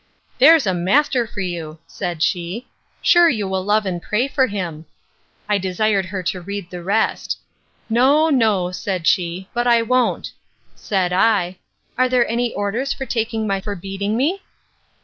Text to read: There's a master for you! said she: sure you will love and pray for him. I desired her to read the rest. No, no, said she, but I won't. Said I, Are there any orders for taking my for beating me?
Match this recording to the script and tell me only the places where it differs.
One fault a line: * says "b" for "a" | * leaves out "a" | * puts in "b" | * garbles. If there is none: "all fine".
all fine